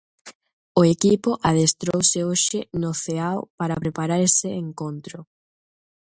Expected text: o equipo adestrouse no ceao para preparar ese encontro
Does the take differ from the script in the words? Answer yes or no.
yes